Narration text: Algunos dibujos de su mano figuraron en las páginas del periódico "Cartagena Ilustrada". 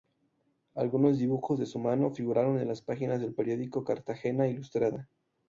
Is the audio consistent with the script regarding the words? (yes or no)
yes